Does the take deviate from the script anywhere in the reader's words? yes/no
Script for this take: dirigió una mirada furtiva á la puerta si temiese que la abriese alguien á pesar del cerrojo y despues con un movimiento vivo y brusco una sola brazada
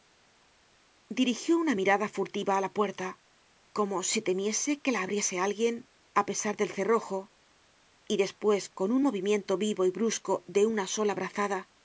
yes